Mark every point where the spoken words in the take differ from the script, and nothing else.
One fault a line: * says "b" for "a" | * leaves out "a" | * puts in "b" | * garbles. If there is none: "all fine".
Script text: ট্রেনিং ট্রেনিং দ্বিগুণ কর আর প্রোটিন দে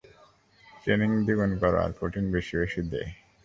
* leaves out "ট্রেনিং"
* puts in "বেশি বেশি"